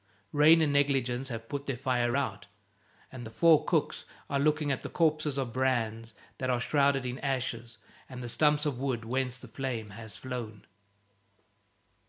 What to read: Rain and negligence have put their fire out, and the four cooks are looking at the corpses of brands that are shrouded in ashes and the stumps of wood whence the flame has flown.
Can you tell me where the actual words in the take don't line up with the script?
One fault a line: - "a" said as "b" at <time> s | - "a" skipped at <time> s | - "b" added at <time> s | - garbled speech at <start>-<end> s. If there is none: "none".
none